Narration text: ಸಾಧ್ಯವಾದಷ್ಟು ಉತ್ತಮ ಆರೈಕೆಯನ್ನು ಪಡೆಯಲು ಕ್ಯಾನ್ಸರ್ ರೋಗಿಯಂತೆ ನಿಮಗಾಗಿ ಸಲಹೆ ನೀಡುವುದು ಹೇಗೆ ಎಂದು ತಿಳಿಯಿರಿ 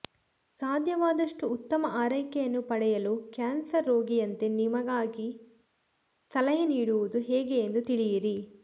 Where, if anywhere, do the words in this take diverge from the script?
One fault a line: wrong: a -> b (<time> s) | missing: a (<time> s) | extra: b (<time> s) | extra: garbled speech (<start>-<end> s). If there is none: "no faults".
no faults